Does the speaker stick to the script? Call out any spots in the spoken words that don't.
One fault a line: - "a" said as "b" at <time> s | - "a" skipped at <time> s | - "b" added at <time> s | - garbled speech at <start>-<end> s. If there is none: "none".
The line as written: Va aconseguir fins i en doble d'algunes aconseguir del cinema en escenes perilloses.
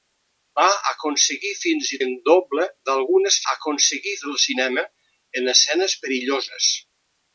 none